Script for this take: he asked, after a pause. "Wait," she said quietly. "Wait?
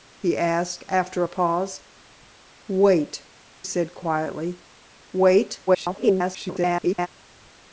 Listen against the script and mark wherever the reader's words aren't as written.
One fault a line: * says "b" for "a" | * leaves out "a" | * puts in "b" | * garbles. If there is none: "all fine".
* leaves out "she"
* garbles